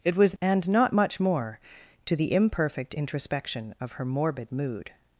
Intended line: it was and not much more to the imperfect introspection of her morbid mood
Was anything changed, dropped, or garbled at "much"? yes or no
no